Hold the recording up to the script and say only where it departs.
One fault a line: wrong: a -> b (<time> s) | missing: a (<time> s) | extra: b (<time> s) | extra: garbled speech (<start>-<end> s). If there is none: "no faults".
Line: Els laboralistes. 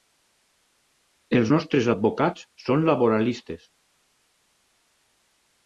extra: nostres advocats són (1.5 s)